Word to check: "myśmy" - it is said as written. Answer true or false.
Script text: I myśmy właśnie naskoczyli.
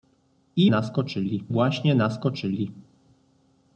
false